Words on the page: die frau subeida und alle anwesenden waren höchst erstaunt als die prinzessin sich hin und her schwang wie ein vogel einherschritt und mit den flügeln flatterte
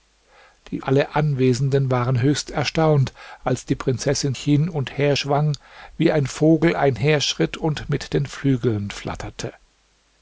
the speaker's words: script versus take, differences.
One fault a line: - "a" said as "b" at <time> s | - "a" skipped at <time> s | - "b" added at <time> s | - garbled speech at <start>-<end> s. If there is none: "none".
- "frau subeida und" skipped at 0.8 s
- "sich" skipped at 4.3 s